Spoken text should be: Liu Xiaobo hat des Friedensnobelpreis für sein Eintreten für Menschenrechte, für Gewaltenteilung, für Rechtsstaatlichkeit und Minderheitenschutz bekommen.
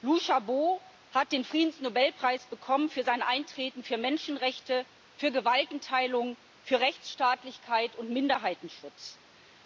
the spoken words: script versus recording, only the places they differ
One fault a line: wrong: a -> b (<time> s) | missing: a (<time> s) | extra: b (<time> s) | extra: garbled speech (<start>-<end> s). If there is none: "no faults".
wrong: des -> den (1.3 s)